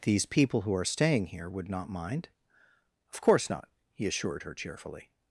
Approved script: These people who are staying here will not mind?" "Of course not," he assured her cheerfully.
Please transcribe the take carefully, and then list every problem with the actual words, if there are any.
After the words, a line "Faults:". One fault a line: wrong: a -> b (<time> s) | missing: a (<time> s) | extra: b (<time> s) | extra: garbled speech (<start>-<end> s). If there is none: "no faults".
These people who are staying here would not mind?" "Of course not," he assured her cheerfully.
Faults:
wrong: will -> would (1.5 s)